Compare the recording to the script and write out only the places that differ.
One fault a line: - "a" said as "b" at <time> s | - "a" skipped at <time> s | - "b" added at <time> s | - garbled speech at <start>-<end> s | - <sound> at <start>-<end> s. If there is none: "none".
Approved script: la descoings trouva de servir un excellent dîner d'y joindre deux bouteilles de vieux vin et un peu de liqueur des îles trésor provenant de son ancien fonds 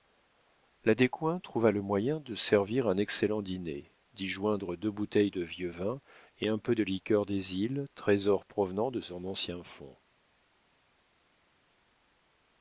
- "le moyen" added at 1.7 s